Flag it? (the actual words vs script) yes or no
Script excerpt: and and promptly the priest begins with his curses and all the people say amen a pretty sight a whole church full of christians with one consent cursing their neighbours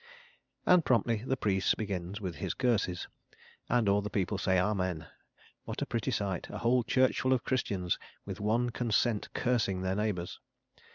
yes